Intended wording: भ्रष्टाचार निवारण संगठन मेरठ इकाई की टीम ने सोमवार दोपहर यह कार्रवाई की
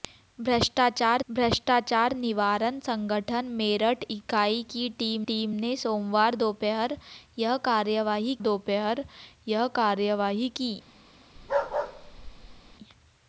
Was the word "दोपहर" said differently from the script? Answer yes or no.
no